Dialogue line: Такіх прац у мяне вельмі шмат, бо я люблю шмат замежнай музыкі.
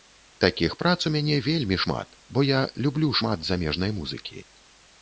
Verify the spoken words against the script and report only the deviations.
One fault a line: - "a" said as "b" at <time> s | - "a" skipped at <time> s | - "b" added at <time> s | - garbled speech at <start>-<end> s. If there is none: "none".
none